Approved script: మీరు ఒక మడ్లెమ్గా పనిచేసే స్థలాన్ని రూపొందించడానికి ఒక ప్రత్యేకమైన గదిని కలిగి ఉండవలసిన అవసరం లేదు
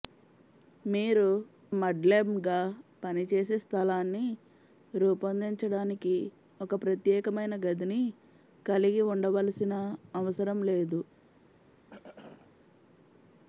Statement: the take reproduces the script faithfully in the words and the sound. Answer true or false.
false